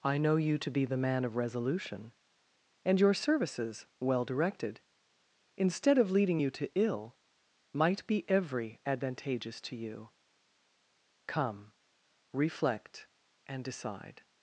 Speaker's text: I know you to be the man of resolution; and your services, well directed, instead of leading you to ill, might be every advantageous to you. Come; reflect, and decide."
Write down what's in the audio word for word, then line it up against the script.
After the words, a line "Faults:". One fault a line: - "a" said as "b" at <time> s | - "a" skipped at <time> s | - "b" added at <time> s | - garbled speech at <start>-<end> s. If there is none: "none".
I know you to be the man of resolution; and your services, well directed, instead of leading you to ill, might be every advantageous to you. Come; reflect, and decide."
Faults:
none